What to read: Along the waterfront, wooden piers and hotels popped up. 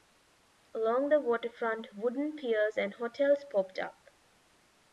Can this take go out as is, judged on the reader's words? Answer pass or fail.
pass